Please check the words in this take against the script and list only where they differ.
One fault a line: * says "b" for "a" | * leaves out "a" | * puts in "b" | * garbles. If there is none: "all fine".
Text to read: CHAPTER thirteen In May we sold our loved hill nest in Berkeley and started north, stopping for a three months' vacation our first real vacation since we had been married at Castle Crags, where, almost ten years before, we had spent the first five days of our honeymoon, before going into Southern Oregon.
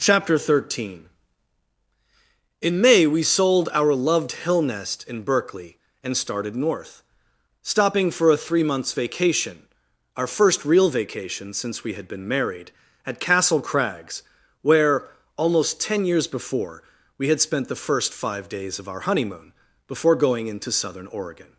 all fine